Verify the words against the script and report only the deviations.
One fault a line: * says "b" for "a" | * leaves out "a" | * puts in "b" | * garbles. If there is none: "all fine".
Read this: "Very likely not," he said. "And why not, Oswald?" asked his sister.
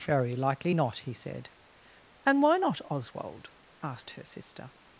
* says "her" for "his"